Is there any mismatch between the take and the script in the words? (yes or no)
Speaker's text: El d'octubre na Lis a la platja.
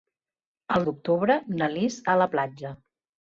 no